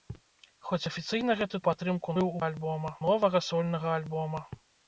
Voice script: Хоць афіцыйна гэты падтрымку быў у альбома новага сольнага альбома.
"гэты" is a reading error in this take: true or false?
false